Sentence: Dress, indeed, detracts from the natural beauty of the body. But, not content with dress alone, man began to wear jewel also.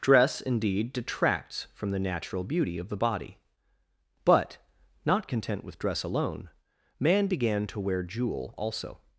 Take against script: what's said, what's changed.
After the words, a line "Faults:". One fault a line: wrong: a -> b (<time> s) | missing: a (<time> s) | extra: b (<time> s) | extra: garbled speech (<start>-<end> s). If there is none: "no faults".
Dress, indeed, detracts from the natural beauty of the body. But, not content with dress alone, man began to wear jewel also.
Faults:
no faults